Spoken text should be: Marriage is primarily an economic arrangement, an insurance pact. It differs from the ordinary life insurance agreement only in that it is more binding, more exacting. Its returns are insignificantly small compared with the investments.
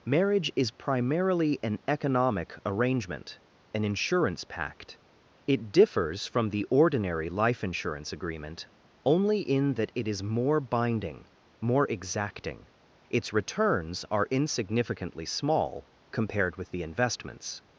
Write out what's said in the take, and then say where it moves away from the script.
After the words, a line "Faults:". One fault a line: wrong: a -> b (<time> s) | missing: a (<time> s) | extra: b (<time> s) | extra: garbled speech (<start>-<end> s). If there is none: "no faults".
Marriage is primarily an economic arrangement, an insurance pact. It differs from the ordinary life insurance agreement only in that it is more binding, more exacting. Its returns are insignificantly small compared with the investments.
Faults:
no faults